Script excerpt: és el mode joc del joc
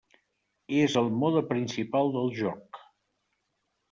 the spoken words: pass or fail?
fail